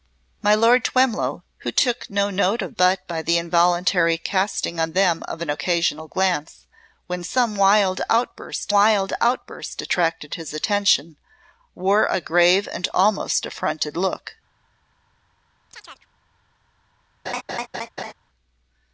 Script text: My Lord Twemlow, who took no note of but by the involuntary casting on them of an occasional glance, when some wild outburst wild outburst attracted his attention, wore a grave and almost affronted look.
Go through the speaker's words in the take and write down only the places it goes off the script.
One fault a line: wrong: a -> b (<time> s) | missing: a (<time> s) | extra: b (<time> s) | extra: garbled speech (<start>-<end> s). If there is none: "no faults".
no faults